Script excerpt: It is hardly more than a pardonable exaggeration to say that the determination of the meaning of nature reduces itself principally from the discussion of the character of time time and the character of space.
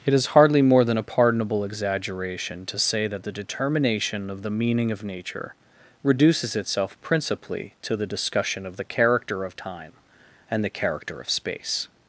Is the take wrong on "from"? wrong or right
wrong